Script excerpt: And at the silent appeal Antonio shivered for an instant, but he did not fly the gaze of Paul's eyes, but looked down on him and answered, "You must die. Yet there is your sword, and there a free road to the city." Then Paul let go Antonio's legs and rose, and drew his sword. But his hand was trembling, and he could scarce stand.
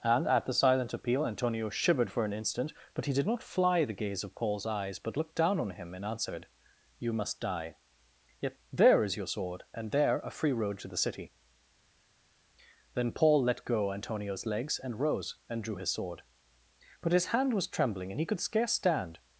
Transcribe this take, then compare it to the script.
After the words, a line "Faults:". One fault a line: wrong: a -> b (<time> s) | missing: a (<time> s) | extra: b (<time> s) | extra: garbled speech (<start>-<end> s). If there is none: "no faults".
And at the silent appeal Antonio shivered for an instant, but he did not fly the gaze of Paul's eyes, but looked down on him and answered, "You must die. Yet there is your sword, and there a free road to the city." Then Paul let go Antonio's legs and rose, and drew his sword. But his hand was trembling, and he could scarce stand.
Faults:
no faults